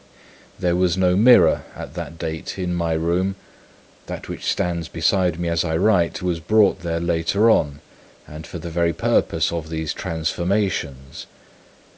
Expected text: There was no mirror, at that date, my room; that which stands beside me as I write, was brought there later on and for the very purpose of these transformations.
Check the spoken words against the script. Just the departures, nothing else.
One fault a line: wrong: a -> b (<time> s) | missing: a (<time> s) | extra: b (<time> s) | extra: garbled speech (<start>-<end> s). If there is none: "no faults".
extra: in (2.6 s)